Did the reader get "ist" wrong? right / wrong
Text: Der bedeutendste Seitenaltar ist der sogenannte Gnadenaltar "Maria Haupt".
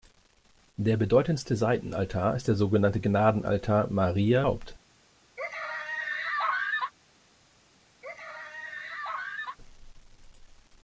right